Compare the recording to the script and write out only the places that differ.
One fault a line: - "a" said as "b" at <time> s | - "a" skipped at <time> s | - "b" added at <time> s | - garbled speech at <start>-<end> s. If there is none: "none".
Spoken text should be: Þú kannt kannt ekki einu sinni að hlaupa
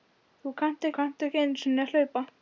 none